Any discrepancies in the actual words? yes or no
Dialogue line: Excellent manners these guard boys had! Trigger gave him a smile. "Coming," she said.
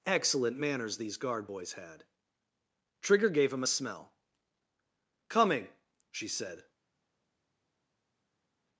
yes